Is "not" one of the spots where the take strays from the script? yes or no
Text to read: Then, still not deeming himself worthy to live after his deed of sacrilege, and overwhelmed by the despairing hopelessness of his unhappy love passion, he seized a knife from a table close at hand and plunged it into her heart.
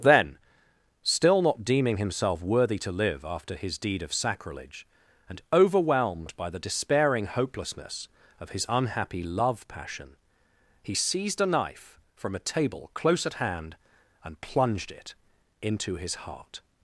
no